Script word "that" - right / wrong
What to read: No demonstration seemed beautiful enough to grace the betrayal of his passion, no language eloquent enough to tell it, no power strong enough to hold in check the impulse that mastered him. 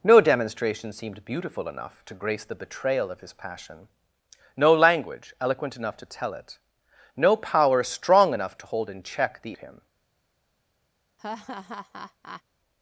wrong